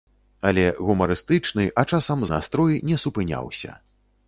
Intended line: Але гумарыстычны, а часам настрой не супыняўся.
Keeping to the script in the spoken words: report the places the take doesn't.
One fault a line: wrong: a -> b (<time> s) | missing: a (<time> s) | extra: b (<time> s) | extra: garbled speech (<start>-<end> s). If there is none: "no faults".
no faults